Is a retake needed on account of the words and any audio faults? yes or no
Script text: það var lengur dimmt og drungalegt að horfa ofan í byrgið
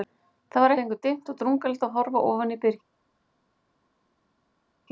no